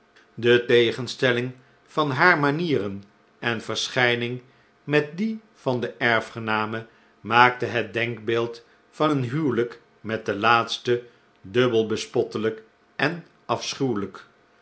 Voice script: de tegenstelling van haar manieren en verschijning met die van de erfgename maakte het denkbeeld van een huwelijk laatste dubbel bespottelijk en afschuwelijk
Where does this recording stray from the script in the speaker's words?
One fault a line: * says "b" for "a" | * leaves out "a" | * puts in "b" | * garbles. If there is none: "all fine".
* puts in "met de"